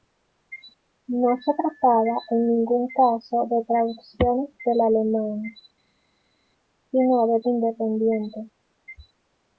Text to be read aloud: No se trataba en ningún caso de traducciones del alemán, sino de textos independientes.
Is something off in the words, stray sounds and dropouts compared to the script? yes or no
yes